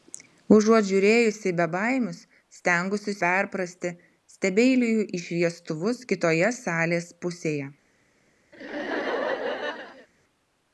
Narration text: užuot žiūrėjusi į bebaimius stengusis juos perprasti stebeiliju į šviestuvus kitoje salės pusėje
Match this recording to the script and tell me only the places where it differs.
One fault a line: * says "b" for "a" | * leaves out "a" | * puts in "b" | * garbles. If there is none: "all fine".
* leaves out "juos"